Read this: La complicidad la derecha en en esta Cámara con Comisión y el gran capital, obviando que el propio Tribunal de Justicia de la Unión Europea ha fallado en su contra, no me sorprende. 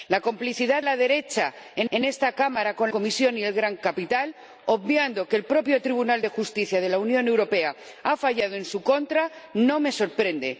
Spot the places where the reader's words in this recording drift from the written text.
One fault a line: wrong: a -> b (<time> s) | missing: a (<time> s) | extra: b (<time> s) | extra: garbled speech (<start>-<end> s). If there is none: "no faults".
no faults